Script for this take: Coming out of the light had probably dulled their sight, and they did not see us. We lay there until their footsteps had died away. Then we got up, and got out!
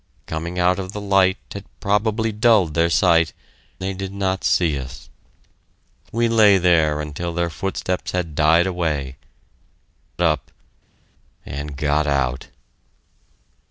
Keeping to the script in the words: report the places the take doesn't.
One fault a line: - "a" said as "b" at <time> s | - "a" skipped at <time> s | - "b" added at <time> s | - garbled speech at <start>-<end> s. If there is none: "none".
- "and" skipped at 3.3 s
- "Then we got" skipped at 9.2 s